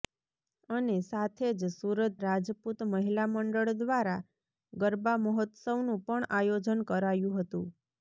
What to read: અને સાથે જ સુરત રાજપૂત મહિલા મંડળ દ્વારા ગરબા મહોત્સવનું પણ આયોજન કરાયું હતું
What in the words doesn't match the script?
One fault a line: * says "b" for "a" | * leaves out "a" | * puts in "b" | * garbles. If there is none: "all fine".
all fine